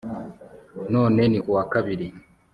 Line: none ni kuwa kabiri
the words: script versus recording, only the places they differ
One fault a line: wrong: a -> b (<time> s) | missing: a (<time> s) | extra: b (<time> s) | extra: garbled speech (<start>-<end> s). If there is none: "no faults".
no faults